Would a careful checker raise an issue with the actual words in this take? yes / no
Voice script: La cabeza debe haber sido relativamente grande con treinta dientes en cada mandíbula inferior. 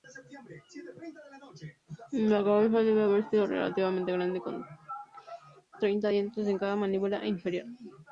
no